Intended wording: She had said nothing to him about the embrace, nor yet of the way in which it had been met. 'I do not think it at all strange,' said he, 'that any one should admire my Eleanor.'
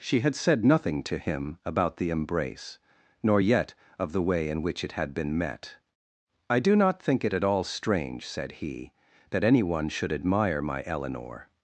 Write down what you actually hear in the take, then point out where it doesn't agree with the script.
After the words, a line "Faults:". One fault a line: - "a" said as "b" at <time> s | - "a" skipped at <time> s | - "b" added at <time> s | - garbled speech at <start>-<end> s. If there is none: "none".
She had said nothing to him about the embrace, nor yet of the way in which it had been met. 'I do not think it at all strange,' said he, 'that any one should admire my Eleanor.'
Faults:
none